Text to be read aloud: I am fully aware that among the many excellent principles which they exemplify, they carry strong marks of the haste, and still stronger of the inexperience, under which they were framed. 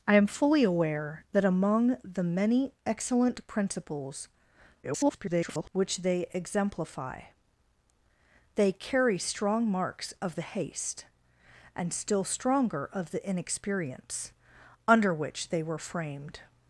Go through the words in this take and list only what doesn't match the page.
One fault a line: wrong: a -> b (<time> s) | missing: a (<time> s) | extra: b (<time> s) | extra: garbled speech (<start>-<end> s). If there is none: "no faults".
extra: garbled speech (4.8-5.7 s)